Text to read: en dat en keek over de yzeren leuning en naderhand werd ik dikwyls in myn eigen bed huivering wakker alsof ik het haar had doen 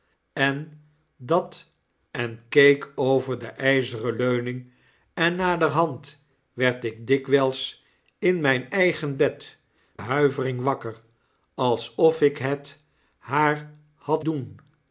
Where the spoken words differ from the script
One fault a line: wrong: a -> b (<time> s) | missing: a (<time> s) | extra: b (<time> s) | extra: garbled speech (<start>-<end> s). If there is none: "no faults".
no faults